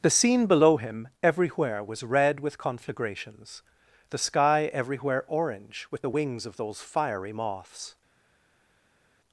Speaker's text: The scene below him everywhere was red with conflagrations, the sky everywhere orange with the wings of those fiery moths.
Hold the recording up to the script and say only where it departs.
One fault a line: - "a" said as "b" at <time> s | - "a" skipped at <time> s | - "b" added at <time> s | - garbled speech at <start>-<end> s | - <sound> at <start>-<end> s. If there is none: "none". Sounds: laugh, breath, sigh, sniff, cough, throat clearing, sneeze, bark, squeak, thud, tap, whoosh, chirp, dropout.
none